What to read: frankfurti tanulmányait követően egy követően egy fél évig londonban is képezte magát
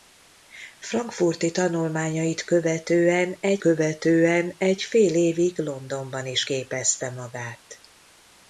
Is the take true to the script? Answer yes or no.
yes